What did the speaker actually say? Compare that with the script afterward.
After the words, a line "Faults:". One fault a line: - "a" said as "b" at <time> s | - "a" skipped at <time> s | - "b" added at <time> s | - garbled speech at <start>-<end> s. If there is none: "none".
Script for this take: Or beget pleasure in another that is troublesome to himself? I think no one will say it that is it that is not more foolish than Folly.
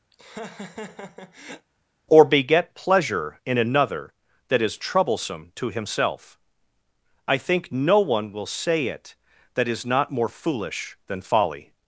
Or beget pleasure in another that is troublesome to himself? I think no one will say it that is not more foolish than Folly.
Faults:
- "it that is" skipped at 9.8 s